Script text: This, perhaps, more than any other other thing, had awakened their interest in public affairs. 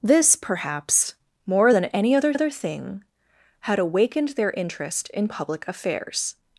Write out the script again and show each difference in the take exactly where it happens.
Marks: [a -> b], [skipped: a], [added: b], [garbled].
This, perhaps, more than any other other thing, had awakened their interest in public affairs.